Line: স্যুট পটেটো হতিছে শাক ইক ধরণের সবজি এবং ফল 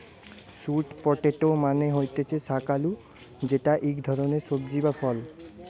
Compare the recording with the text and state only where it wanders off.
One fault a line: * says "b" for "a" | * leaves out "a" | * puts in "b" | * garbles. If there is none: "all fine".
* puts in "মানে"
* puts in "আলু যেটা"
* says "বা" for "এবং"